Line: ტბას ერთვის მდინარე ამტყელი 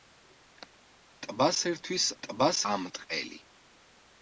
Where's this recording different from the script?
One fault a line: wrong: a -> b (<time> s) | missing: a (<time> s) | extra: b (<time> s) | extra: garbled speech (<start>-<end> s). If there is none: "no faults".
wrong: მდინარე -> ტბას (2.3 s)